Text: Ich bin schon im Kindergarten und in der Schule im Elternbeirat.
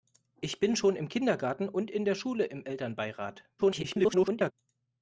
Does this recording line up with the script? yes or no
no